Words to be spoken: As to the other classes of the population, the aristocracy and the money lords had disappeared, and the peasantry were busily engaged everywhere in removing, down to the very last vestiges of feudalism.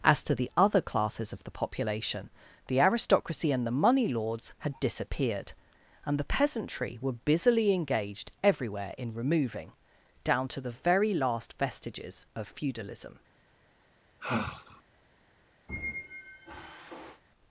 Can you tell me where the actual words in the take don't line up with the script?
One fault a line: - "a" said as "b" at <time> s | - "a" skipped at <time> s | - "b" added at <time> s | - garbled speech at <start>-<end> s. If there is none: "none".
none